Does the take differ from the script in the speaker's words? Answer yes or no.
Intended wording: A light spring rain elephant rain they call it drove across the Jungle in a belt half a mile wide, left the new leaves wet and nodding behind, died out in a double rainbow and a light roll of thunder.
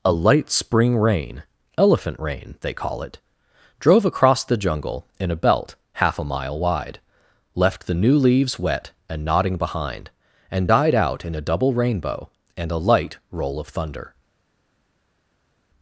yes